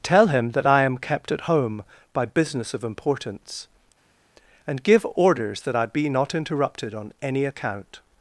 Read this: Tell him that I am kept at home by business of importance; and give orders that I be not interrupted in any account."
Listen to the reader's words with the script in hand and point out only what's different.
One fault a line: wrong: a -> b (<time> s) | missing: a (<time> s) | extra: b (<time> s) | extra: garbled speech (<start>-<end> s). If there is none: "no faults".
wrong: in -> on (6.9 s)